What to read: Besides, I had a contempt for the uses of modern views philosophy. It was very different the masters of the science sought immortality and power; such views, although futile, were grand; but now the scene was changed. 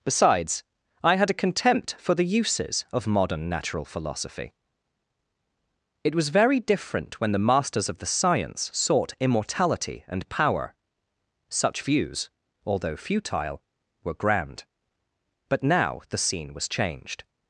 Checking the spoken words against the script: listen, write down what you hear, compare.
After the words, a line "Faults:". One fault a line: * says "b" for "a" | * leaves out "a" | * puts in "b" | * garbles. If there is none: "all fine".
Besides, I had a contempt for the uses of modern natural philosophy. It was very different when the masters of the science sought immortality and power; such views, although futile, were grand; but now the scene was changed.
Faults:
* says "natural" for "views"
* puts in "when"